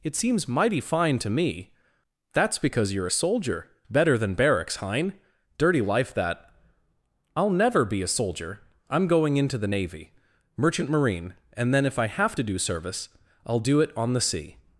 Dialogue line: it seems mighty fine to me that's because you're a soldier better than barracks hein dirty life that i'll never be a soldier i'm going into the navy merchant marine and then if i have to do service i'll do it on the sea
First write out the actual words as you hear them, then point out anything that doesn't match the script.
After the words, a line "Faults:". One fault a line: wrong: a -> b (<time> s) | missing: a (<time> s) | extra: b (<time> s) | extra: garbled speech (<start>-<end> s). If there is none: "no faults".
it seems mighty fine to me that's because you're a soldier better than barracks hein dirty life that i'll never be a soldier i'm going into the navy merchant marine and then if i have to do service i'll do it on the sea
Faults:
no faults